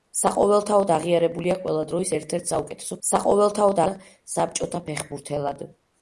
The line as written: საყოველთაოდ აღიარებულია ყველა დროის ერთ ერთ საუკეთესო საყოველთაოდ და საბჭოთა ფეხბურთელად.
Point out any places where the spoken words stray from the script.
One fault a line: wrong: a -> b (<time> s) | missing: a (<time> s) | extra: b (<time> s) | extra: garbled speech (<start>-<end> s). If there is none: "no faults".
no faults